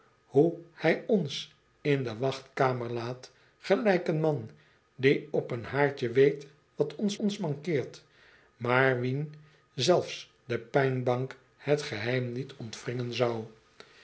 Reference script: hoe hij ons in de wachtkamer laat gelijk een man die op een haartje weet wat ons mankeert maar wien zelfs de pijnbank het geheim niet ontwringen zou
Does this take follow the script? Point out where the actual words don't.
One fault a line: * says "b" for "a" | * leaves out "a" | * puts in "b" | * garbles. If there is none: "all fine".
* puts in "ons"